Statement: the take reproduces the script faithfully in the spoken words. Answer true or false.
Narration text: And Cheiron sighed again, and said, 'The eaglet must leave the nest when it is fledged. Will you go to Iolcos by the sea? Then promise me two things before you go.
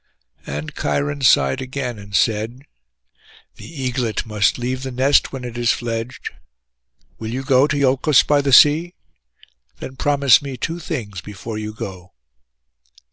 true